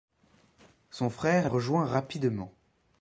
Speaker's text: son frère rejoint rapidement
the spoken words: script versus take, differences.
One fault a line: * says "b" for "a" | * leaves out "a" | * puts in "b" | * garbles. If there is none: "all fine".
all fine